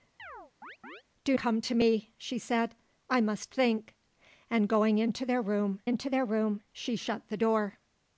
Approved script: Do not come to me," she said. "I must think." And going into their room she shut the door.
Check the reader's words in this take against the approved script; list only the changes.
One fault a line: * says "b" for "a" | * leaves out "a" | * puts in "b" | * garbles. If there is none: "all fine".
* leaves out "not"
* puts in "into their room"